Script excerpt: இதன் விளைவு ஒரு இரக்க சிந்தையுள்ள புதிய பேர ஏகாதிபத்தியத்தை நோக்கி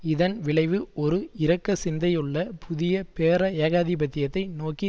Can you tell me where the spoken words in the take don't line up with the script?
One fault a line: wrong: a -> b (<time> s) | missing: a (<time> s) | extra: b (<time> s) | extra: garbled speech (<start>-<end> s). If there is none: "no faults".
no faults